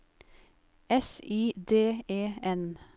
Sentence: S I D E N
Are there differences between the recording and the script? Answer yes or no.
no